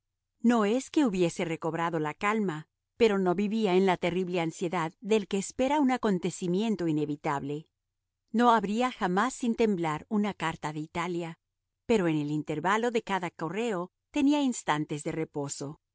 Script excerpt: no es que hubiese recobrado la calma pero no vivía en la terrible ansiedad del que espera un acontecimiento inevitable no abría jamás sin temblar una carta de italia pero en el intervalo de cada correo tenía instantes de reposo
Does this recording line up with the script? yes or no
yes